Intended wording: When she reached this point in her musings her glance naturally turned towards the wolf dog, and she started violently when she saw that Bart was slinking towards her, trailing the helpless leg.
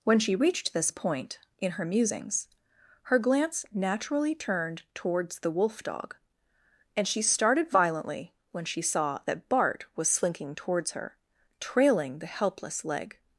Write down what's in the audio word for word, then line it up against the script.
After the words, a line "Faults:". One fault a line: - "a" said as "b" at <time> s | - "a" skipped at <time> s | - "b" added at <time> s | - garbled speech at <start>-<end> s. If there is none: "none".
When she reached this point in her musings her glance naturally turned towards the wolf dog, and she started violently when she saw that Bart was slinking towards her, trailing the helpless leg.
Faults:
none